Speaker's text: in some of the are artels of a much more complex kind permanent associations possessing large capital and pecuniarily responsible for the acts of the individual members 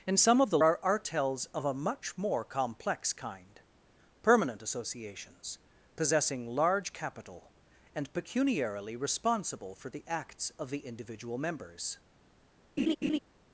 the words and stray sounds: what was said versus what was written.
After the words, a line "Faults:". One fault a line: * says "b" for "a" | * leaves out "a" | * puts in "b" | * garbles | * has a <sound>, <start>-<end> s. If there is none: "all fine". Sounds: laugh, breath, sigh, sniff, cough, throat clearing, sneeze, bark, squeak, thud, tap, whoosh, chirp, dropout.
in some of the are artels of a much more complex kind permanent associations possessing large capital and pecuniarily responsible for the acts of the individual members
Faults:
* has a laugh, 12.8-13.2 s